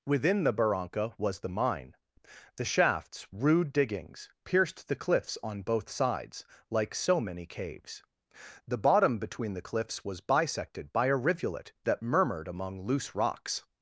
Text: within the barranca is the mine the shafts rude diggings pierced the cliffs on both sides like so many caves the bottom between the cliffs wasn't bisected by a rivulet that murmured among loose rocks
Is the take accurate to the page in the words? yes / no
no